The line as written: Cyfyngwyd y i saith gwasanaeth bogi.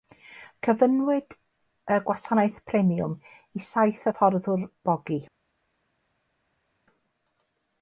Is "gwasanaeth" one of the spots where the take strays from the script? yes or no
yes